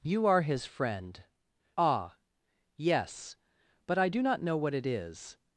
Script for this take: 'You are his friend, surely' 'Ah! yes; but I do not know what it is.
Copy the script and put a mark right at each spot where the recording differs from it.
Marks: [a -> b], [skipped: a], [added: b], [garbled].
'You are his friend, [skipped: surely'] 'Ah! yes; but I do not know what it is.